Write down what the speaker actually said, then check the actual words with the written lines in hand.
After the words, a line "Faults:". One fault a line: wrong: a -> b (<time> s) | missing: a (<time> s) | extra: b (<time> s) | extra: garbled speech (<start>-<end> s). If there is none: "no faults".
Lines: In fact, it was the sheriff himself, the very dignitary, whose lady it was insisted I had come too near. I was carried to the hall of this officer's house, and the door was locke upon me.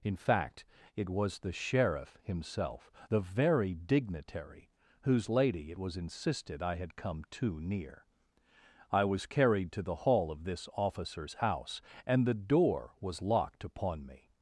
In fact, it was the sheriff himself, the very dignitary, whose lady it was insisted I had come too near. I was carried to the hall of this officer's house, and the door was locked upon me.
Faults:
wrong: locke -> locked (13.2 s)